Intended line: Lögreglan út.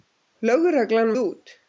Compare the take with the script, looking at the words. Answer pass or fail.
pass